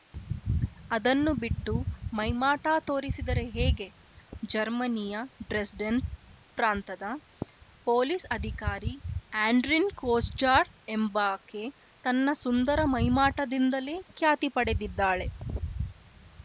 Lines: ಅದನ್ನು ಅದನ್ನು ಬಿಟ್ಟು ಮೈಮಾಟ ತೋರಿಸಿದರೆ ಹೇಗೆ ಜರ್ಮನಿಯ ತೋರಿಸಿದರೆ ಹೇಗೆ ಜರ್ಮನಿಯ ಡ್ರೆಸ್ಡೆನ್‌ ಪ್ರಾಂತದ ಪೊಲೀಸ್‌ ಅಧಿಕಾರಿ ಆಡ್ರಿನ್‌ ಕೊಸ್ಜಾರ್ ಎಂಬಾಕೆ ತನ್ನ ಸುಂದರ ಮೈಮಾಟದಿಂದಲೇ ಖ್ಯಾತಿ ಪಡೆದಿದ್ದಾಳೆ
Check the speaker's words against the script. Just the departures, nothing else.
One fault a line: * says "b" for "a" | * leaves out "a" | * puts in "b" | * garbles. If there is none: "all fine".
* leaves out "ಅದನ್ನು"
* leaves out "ತೋರಿಸಿದರೆ ಹೇಗೆ ಜರ್ಮನಿಯ"